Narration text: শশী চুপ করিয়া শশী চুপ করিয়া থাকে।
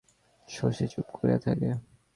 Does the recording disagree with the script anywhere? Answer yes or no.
yes